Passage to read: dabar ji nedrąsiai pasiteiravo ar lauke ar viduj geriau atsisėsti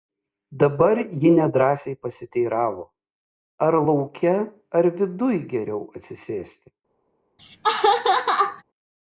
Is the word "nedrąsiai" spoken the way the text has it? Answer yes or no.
yes